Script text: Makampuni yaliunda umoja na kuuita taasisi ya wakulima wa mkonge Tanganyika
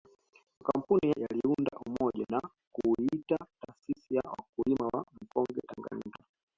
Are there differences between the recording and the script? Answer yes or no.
no